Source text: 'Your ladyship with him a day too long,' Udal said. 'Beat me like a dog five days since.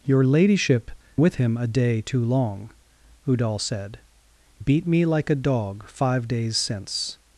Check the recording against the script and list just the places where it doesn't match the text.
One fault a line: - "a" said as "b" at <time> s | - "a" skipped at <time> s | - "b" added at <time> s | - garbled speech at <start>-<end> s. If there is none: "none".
none